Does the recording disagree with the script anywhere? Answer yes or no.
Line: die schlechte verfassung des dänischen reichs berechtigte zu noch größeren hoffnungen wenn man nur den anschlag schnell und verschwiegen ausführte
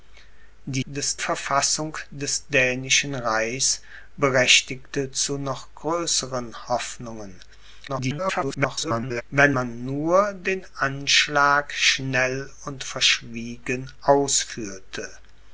yes